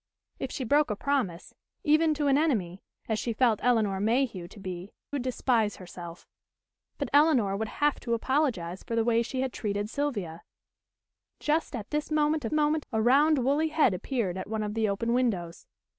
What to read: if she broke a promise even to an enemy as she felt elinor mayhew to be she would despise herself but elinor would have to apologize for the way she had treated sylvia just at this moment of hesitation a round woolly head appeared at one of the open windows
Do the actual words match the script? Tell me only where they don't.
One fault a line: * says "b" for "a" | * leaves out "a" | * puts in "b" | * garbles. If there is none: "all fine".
* leaves out "she"
* says "moment" for "hesitation"